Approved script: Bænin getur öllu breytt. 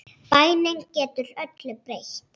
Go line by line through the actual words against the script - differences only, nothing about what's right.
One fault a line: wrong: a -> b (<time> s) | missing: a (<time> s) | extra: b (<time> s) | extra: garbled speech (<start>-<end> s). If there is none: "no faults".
no faults